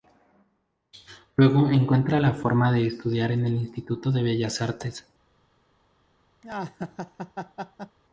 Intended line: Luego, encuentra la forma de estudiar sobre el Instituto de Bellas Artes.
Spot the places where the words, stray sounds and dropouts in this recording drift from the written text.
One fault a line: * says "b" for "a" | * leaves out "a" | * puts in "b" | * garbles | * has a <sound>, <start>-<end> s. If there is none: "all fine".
* says "en" for "sobre"
* has a laugh, 6.4-8.0 s